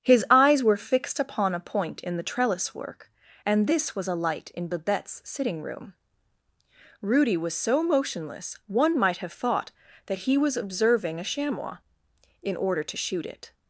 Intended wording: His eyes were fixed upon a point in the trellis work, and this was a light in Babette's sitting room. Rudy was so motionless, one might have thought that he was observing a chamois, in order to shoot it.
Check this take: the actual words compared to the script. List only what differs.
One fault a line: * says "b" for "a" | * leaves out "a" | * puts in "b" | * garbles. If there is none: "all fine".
all fine